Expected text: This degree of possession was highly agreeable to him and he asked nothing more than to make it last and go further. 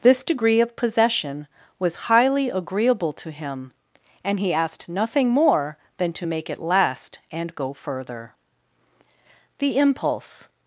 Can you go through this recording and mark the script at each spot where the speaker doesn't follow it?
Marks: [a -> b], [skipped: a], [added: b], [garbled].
This degree of possession was highly agreeable to him and he asked nothing more than to make it last and go further. [added: The impulse]